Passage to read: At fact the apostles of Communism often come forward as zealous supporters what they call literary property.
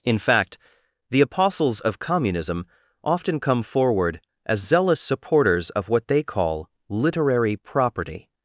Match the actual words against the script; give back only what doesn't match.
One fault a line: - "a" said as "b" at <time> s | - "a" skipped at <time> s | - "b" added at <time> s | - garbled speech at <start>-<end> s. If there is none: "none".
- "At" said as "In" at 0.0 s
- "of" added at 5.7 s